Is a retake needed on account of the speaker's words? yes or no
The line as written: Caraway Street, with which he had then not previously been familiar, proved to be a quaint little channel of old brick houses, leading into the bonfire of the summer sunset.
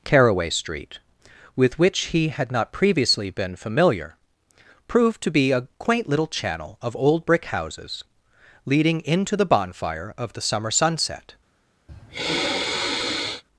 yes